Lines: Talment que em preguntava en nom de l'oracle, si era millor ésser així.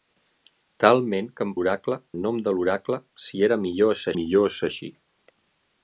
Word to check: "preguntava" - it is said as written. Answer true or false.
false